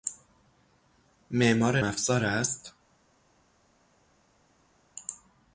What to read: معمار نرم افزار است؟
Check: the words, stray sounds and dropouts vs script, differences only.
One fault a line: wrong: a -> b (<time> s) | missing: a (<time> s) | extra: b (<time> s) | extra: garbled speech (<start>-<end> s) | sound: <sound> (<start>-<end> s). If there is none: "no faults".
missing: نرم (1.8 s)